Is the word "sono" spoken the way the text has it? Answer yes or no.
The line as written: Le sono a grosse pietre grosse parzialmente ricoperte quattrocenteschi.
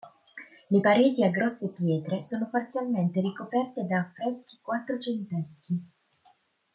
no